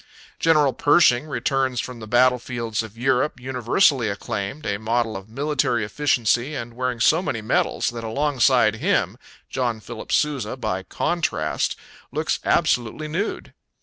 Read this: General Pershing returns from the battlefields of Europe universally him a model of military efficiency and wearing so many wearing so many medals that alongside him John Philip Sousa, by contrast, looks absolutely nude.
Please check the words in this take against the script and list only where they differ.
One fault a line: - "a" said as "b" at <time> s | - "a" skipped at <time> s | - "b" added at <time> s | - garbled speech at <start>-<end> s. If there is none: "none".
- "him" said as "acclaimed" at 4.1 s
- "wearing so many" skipped at 7.4 s